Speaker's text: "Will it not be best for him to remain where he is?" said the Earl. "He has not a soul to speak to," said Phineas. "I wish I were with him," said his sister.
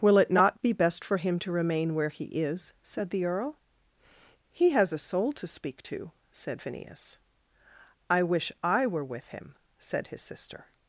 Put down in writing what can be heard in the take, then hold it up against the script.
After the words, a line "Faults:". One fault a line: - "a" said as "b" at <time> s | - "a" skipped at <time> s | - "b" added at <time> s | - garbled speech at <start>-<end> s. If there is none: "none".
"Will it not be best for him to remain where he is?" said the Earl. "He has a soul to speak to," said Phineas. "I wish I were with him," said his sister.
Faults:
- "not" skipped at 4.9 s